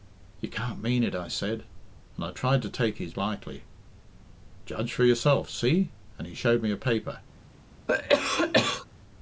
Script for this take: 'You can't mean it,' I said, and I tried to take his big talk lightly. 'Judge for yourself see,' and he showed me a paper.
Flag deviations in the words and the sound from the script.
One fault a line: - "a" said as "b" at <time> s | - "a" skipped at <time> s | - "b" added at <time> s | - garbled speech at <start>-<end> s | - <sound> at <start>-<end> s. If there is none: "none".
- "big talk" skipped at 3.1 s
- cough at 7.9-8.9 s